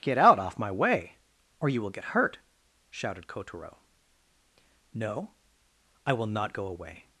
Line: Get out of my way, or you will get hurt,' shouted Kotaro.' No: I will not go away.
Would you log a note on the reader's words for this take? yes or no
yes